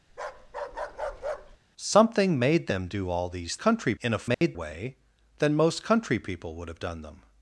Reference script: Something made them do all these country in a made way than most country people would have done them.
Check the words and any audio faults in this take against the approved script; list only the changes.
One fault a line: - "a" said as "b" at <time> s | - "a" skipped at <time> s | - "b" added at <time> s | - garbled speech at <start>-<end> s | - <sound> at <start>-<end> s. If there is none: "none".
- bark at 0.1-1.6 s
- dropout at 4.3-4.4 s